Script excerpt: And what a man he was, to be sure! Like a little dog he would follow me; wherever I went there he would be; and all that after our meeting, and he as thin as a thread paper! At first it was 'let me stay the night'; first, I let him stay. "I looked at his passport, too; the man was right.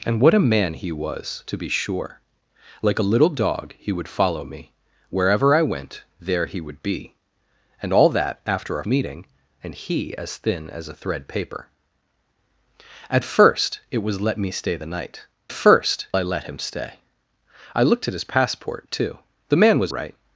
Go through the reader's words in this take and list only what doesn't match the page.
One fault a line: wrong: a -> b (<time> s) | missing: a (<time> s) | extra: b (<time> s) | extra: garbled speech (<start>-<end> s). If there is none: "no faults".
no faults